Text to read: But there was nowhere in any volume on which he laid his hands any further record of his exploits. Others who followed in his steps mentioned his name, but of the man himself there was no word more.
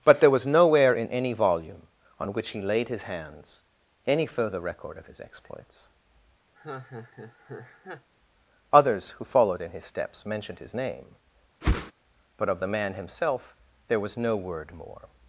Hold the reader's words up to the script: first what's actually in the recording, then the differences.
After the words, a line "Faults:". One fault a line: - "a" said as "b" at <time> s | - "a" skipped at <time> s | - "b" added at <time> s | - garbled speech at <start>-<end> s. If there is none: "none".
But there was nowhere in any volume on which he laid his hands any further record of his exploits. Others who followed in his steps mentioned his name, but of the man himself there was no word more.
Faults:
none